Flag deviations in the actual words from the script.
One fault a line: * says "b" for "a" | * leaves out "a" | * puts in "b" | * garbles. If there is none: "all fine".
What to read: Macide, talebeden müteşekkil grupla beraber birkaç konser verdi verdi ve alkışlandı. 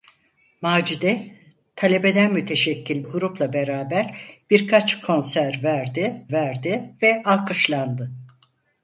all fine